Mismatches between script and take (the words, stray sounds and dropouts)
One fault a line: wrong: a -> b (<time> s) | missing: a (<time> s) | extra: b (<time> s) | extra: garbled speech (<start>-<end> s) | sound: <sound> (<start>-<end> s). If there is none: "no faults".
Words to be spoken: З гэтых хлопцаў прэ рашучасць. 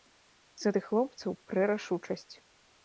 no faults